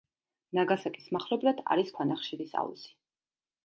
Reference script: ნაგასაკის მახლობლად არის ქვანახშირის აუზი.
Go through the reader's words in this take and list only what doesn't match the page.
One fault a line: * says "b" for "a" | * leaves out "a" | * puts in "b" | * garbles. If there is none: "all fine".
all fine